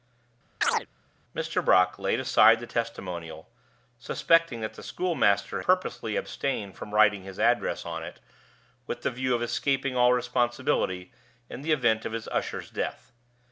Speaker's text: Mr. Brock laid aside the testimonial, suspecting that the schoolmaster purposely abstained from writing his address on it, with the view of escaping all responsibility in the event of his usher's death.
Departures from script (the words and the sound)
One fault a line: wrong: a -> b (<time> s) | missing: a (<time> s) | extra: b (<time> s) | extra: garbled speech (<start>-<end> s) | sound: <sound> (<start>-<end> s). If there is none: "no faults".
sound: chirp (0.6-0.9 s)